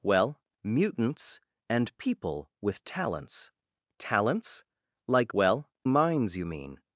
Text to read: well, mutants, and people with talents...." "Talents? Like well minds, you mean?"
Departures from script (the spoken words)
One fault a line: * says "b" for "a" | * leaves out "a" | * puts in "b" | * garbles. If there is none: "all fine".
all fine